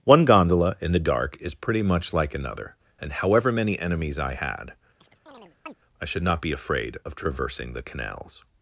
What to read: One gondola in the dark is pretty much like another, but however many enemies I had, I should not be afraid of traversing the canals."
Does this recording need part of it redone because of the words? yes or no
yes